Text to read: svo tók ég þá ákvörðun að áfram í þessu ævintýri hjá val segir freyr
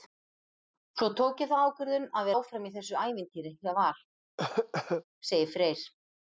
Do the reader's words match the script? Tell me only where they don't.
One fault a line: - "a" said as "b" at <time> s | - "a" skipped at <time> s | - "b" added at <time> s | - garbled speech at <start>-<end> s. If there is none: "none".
none